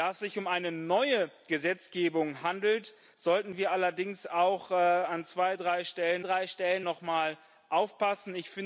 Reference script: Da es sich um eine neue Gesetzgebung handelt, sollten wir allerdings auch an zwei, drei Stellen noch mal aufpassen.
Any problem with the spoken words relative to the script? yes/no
yes